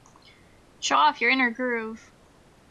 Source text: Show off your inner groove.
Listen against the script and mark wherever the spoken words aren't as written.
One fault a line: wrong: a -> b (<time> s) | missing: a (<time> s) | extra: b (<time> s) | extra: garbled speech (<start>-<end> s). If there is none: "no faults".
no faults